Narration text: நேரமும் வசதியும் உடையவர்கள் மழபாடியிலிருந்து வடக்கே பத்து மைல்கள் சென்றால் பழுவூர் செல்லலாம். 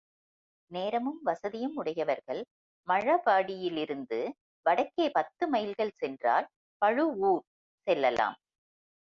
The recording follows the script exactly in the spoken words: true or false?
true